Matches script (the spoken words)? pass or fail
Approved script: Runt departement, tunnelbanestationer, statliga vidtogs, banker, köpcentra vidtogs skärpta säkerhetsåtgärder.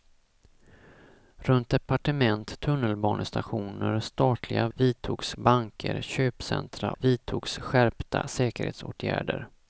pass